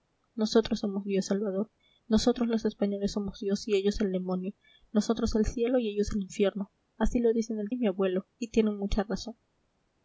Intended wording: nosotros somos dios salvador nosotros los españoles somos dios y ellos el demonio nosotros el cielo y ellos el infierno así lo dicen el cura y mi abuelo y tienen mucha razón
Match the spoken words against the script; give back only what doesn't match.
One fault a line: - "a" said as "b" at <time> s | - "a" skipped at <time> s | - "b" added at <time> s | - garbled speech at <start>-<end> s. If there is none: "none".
- "cura" skipped at 7.7 s